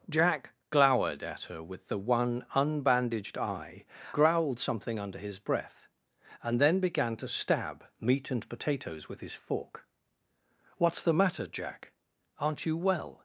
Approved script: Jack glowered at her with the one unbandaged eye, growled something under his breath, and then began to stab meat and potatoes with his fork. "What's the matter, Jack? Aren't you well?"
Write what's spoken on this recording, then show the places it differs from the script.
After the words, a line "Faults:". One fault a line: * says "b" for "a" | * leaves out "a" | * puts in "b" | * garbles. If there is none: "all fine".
Jack glowered at her with the one unbandaged eye, growled something under his breath, and then began to stab meat and potatoes with his fork. "What's the matter, Jack? Aren't you well?"
Faults:
all fine